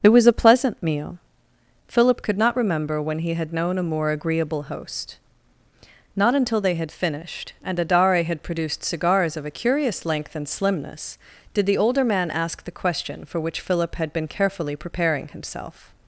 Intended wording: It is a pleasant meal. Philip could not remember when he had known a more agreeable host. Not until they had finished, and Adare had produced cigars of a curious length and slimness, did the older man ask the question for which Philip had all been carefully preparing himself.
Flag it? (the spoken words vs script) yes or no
yes